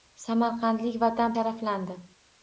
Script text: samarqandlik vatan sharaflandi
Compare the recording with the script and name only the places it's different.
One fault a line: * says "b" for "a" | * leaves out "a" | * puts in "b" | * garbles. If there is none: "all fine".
all fine